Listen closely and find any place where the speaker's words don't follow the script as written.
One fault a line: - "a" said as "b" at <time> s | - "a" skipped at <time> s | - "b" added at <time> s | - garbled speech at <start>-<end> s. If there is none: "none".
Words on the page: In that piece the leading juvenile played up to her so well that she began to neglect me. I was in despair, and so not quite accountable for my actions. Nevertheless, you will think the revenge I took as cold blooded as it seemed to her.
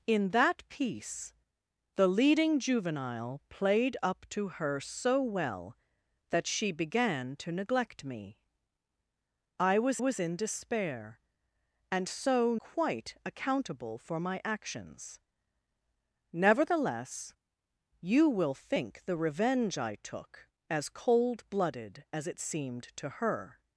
- "was" added at 10.0 s
- "not" skipped at 12.6 s